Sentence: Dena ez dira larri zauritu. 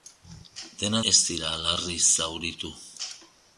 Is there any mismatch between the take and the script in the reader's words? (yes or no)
no